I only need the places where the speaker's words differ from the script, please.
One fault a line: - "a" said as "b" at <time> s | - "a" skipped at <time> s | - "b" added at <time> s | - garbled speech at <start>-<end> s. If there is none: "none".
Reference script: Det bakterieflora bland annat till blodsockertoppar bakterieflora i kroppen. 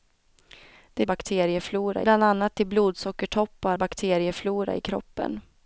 none